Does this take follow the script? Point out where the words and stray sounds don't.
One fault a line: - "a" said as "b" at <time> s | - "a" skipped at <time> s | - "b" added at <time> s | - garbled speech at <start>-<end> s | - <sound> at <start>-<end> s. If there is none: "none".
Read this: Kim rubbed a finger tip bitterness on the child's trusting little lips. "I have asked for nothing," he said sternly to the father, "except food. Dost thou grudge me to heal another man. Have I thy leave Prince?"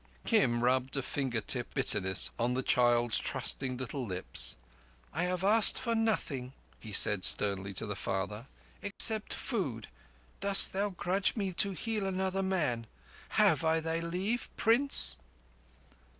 - dropout at 8.9-9.0 s